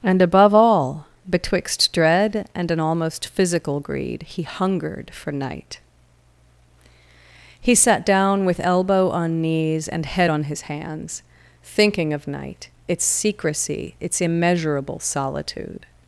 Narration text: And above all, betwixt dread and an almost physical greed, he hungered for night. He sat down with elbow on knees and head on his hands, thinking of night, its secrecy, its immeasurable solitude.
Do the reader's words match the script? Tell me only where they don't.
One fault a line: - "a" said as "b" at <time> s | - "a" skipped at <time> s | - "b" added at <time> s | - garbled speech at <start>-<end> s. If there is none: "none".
none